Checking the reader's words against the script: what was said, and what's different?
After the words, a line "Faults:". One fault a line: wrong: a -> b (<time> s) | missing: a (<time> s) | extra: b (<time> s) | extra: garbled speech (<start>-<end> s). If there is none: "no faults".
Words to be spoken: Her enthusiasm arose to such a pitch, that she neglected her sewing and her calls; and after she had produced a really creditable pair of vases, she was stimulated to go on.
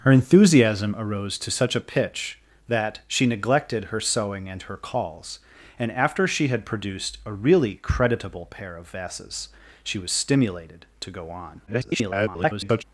Her enthusiasm arose to such a pitch, that she neglected her sewing and her calls; and after she had produced a really creditable pair of vases, she was stimulated to go on. [garbled]
Faults:
extra: garbled speech (11.7-12.8 s)